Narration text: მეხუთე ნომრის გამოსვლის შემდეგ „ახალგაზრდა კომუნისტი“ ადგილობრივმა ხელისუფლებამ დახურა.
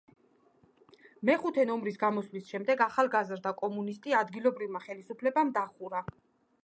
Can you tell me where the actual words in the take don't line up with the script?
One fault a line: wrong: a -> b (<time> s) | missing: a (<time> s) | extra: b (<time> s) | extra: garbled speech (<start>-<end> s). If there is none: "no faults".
no faults